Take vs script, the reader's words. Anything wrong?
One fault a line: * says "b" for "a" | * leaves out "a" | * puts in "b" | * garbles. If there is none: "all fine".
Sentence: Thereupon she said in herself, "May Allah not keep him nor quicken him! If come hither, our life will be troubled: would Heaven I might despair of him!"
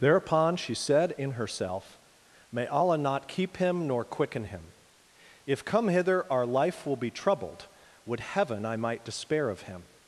all fine